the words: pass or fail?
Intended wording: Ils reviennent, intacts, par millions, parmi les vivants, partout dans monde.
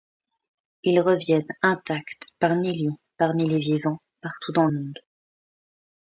pass